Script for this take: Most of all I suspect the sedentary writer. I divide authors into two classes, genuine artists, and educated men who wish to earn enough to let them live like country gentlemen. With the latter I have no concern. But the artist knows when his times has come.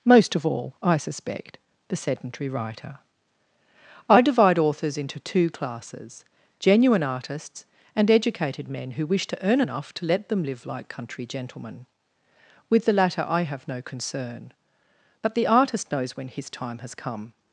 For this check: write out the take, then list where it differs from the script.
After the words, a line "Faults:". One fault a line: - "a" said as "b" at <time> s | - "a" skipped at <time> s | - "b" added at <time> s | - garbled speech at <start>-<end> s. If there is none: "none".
Most of all I suspect the sedentary writer. I divide authors into two classes, genuine artists, and educated men who wish to earn enough to let them live like country gentlemen. With the latter I have no concern. But the artist knows when his time has come.
Faults:
- "times" said as "time" at 16.5 s